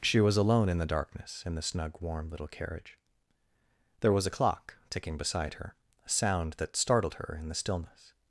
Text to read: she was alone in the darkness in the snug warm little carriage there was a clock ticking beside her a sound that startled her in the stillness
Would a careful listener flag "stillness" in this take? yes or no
no